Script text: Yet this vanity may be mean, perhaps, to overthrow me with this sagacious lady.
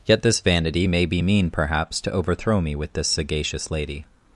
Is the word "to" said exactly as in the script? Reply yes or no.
yes